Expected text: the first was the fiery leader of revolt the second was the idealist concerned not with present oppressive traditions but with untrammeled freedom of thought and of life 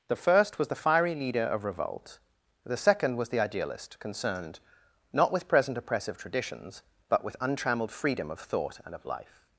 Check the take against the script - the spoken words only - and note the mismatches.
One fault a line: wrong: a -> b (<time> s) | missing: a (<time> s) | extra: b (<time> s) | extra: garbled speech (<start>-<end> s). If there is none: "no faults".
no faults